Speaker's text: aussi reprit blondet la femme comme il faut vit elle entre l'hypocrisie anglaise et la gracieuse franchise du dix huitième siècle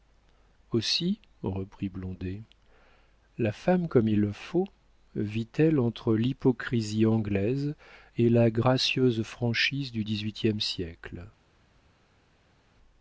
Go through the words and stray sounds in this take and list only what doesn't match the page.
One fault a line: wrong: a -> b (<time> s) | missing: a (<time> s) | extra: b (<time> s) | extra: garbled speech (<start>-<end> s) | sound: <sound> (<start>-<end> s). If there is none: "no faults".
no faults